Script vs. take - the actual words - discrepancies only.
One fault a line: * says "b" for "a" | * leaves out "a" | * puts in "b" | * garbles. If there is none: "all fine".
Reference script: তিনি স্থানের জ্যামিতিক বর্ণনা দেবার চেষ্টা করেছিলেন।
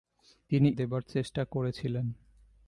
* leaves out "স্থানের জ্যামিতিক বর্ণনা"